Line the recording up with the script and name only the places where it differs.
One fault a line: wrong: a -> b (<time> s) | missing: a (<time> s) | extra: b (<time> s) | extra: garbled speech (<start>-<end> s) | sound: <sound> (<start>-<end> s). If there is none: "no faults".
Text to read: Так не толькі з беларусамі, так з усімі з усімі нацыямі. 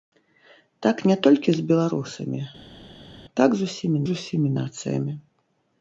no faults